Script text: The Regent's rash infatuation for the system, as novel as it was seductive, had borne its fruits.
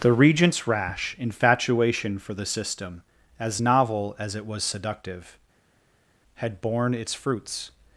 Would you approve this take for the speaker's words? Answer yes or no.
yes